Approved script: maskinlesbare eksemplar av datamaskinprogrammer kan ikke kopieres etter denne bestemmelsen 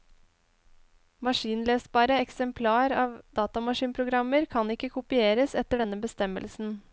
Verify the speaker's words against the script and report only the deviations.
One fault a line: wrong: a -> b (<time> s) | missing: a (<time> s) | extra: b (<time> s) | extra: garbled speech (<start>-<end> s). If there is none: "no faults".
no faults